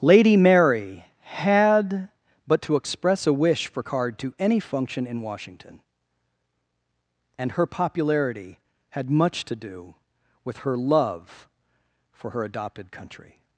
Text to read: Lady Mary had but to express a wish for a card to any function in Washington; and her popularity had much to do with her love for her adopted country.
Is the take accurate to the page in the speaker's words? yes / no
no